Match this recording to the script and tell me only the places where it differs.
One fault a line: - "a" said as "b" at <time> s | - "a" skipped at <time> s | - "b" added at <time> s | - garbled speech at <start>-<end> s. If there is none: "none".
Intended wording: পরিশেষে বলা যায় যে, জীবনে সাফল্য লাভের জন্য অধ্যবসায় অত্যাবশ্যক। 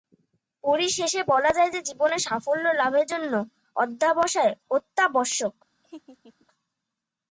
none